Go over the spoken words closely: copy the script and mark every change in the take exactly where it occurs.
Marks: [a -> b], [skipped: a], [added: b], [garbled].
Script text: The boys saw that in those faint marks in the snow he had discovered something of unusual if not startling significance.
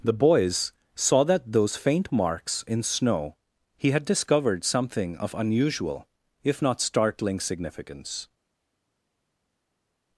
The boys saw that [skipped: in] those faint marks in [skipped: the] snow he had discovered something of unusual if not startling significance.